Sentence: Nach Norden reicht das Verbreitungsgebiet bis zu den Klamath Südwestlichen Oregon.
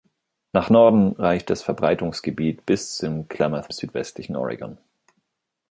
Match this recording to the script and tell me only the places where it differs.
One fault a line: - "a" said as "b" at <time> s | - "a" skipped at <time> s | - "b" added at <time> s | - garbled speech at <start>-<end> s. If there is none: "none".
none